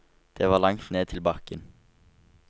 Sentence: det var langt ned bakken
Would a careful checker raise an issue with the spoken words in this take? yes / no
yes